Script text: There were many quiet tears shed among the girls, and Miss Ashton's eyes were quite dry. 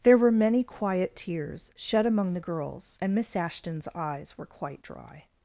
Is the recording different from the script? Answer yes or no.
no